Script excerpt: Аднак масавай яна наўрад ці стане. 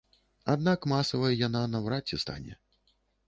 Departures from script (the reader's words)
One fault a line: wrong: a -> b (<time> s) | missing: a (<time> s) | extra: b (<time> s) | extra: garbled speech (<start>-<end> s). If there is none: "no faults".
no faults